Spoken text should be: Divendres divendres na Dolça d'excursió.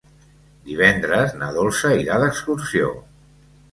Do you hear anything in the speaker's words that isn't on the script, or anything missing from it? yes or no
yes